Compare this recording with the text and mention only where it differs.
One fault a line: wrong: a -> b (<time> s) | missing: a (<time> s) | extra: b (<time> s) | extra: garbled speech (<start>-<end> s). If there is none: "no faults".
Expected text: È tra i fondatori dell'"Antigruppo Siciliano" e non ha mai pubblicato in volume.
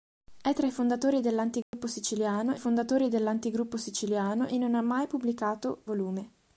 extra: fondatori dell'"Antigruppo Siciliano (2.6 s)
missing: in (5.8 s)